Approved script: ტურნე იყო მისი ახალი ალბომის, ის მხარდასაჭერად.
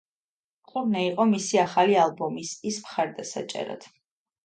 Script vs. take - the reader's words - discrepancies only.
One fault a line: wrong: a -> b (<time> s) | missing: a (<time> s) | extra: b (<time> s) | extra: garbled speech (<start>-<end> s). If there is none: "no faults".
no faults